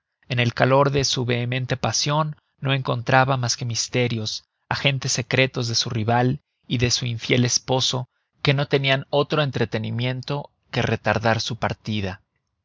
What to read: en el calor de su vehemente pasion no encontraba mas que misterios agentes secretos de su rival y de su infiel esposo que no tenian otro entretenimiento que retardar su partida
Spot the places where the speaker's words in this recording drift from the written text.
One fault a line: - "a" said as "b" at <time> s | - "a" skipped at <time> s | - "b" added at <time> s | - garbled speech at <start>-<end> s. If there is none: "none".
none